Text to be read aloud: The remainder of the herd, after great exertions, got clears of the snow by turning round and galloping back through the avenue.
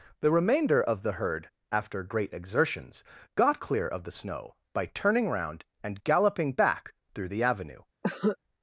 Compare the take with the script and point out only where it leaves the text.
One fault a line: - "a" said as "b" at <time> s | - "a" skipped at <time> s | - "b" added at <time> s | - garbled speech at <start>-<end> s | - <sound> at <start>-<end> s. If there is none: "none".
- "clears" said as "clear" at 3.6 s
- cough at 8.0-8.4 s